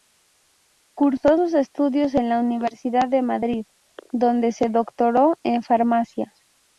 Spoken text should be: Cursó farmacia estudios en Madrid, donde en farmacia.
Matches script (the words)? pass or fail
fail